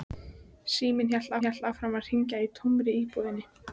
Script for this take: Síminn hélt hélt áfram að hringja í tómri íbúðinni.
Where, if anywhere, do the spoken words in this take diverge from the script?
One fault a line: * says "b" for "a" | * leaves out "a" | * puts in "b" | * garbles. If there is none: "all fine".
all fine